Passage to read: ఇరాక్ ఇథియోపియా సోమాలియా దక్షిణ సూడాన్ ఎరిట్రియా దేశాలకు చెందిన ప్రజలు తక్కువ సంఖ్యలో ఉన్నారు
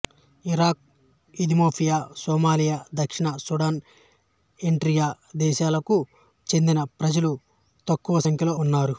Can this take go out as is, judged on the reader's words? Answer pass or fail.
pass